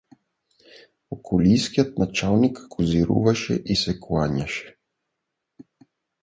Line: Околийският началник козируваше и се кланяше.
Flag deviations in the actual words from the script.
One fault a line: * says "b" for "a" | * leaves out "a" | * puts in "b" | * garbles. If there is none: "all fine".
all fine